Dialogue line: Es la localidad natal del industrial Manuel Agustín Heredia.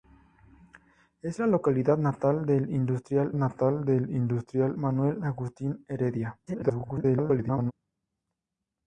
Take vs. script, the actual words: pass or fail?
fail